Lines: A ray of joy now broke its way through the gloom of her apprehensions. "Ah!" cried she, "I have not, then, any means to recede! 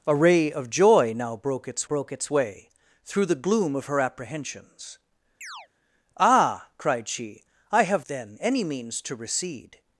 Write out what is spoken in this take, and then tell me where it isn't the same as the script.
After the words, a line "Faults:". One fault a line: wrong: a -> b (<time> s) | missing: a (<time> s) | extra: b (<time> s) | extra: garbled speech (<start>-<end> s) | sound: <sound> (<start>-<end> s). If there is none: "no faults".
A ray of joy now broke its broke its way through the gloom of her apprehensions. "Ah!" cried she, "I have then, any means to recede!
Faults:
extra: broke its (1.8 s)
sound: chirp (5.4-5.7 s)
missing: not (8.1 s)